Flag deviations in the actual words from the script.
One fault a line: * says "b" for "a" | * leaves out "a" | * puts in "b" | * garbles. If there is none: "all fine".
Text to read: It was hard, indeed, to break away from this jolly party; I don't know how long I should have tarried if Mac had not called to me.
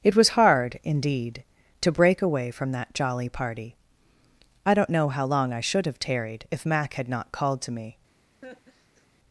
* says "that" for "this"